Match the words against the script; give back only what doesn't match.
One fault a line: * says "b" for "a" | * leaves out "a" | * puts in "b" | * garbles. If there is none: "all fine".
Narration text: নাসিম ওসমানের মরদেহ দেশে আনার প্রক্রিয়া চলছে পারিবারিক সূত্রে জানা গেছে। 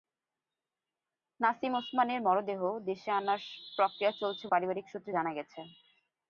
all fine